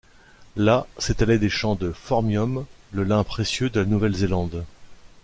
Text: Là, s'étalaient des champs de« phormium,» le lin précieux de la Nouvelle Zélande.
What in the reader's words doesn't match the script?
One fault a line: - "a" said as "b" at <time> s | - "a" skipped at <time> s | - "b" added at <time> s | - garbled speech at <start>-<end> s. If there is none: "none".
none